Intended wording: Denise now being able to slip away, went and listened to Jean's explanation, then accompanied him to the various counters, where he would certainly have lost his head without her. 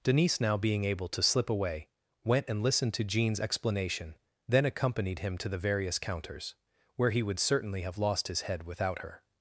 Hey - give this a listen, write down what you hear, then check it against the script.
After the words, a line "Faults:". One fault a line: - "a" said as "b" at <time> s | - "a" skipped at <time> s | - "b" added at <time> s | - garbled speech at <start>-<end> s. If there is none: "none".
Denise now being able to slip away, went and listened to Jean's explanation, then accompanied him to the various counters, where he would certainly have lost his head without her.
Faults:
none